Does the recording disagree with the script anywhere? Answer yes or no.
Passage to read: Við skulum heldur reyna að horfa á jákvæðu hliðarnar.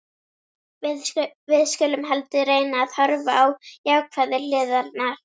no